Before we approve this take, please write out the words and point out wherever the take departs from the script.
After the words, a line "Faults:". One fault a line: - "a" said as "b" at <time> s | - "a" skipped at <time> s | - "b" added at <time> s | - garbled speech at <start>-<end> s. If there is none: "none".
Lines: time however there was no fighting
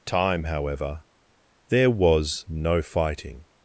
time however there was no fighting
Faults:
none